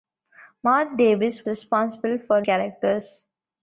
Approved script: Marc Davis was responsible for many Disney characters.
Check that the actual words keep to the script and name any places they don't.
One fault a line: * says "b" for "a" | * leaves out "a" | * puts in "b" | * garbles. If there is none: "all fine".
* leaves out "was"
* leaves out "many Disney"